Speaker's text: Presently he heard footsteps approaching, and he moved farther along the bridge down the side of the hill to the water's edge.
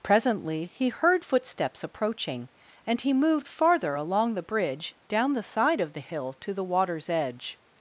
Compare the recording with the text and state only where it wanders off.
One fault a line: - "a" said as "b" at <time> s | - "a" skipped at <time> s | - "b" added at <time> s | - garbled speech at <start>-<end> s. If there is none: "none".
none